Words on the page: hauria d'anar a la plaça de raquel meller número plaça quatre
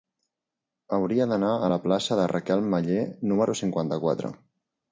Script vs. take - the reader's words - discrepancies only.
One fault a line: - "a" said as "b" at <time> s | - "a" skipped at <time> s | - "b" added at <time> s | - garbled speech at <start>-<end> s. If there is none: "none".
- "plaça" said as "cinquanta" at 3.6 s